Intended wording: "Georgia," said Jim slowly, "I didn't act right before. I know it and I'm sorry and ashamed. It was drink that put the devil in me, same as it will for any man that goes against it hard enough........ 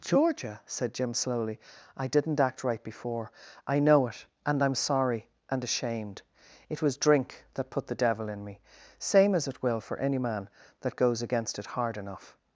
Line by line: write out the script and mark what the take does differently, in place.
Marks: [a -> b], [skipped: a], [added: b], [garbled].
"Georgia," said Jim slowly, "I didn't act right before. I know it and I'm sorry and ashamed. It was drink that put the devil in me, same as it will for any man that goes against it hard enough........